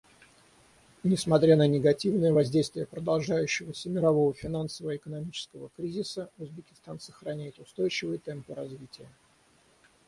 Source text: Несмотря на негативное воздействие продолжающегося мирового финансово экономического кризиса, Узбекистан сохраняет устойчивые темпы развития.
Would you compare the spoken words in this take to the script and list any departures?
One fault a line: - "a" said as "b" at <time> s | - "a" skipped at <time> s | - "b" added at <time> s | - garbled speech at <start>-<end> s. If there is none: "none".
none